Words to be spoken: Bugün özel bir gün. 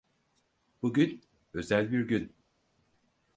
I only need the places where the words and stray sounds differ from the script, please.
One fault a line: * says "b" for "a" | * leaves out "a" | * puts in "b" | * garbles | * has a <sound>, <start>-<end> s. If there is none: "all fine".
all fine